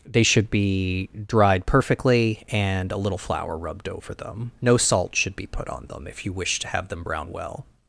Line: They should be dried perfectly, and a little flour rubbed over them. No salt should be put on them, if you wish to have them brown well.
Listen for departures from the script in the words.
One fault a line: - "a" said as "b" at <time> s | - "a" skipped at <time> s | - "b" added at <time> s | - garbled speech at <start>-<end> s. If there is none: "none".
none